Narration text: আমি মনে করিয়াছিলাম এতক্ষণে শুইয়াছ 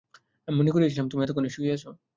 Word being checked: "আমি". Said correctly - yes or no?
yes